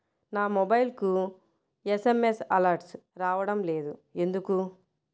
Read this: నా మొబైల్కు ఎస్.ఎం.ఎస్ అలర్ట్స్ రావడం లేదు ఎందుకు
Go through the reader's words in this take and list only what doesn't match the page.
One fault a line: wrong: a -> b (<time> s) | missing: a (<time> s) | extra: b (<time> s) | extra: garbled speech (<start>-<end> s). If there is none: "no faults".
no faults